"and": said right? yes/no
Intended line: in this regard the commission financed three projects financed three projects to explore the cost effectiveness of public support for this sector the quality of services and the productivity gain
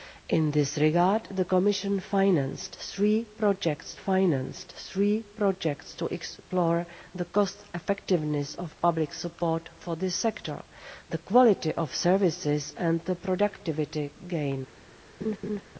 yes